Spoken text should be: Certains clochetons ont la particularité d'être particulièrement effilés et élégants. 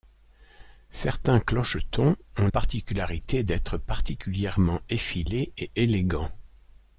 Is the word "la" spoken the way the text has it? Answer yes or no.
no